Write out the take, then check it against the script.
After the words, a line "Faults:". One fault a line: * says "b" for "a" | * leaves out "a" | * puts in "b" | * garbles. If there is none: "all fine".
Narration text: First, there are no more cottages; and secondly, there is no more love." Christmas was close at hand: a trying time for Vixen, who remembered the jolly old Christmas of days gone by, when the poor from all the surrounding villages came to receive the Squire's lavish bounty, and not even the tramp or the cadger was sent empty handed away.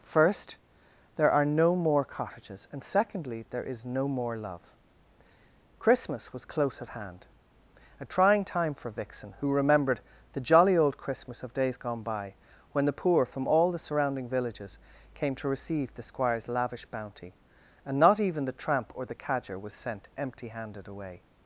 First, there are no more cottages; and secondly, there is no more love." Christmas was close at hand: a trying time for Vixen, who remembered the jolly old Christmas of days gone by, when the poor from all the surrounding villages came to receive the Squire's lavish bounty, and not even the tramp or the cadger was sent empty handed away.
Faults:
all fine